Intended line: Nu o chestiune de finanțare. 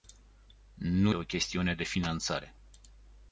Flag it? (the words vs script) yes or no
no